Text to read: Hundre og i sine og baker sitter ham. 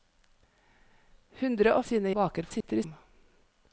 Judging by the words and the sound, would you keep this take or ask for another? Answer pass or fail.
fail